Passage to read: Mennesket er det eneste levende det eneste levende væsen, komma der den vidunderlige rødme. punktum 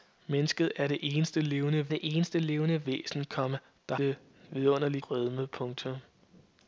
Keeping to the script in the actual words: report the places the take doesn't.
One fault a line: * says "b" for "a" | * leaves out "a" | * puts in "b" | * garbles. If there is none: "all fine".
all fine